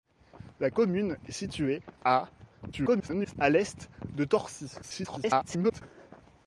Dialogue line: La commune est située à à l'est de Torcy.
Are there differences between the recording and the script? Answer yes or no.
yes